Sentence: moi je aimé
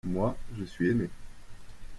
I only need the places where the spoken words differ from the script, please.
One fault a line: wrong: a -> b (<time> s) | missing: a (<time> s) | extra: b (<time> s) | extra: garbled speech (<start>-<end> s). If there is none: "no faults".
extra: suis (0.6 s)